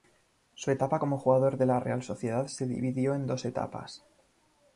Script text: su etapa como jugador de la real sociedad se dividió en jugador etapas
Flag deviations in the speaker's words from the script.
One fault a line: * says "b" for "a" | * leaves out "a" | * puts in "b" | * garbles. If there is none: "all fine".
* says "dos" for "jugador"